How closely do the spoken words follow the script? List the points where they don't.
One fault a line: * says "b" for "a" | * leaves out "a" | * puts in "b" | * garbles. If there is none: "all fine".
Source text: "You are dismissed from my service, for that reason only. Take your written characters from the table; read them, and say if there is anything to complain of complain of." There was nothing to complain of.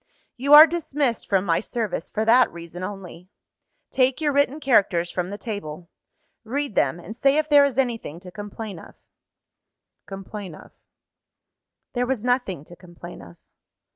all fine